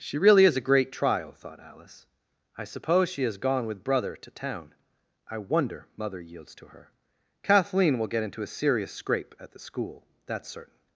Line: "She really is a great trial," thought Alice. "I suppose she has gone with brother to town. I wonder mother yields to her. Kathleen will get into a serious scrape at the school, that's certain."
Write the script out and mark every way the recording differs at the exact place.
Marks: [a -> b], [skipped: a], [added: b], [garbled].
"She really is a great trial," thought Alice. "I suppose she has gone with brother to town. I wonder mother yields to her. Kathleen will get into a serious scrape at the school, that's certain."